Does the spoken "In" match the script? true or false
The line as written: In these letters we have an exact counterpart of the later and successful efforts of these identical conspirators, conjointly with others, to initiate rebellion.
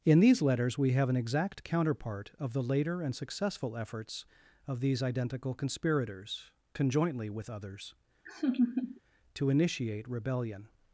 true